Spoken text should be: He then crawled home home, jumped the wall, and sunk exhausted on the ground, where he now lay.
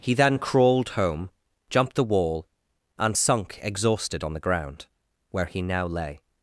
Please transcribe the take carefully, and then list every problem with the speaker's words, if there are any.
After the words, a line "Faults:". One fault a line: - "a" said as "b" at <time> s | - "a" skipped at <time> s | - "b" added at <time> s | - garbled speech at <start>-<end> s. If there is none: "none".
He then crawled home, jumped the wall, and sunk exhausted on the ground, where he now lay.
Faults:
- "home" skipped at 1.3 s